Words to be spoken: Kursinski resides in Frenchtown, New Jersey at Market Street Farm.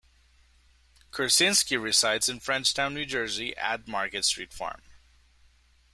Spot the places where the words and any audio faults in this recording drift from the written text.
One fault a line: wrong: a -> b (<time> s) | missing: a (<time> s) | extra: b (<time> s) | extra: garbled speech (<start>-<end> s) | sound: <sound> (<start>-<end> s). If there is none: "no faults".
no faults